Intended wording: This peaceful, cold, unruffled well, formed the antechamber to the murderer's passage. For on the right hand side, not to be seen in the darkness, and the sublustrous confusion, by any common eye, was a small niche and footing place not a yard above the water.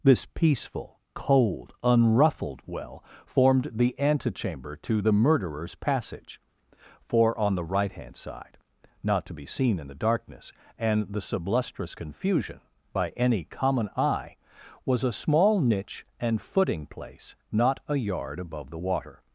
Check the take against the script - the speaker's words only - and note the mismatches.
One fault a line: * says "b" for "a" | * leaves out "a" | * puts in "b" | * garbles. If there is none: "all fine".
all fine